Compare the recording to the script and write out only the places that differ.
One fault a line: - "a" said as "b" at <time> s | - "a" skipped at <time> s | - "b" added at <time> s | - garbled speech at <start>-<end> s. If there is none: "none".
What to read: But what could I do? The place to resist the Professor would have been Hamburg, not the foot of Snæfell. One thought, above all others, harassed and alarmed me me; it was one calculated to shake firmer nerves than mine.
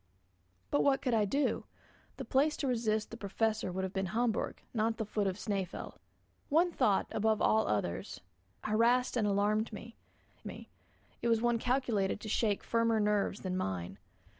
none